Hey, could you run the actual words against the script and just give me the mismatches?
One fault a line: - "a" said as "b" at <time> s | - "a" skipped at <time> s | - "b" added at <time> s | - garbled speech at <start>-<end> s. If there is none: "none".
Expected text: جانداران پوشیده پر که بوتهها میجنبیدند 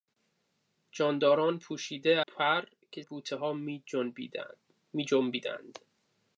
none